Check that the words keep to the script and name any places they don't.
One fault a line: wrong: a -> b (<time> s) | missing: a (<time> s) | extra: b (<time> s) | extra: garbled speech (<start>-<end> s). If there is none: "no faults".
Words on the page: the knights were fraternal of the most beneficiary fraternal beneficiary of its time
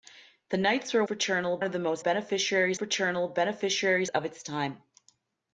no faults